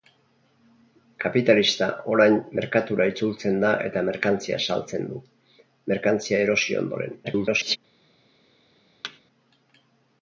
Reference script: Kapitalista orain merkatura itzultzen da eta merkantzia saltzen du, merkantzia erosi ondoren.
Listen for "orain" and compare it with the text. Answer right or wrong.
right